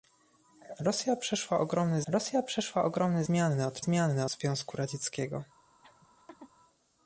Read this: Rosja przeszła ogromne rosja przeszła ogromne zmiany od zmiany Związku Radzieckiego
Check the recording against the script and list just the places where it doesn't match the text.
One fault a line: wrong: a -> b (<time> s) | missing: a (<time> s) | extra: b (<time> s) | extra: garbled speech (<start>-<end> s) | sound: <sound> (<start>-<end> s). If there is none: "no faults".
sound: laugh (5.8-6.5 s)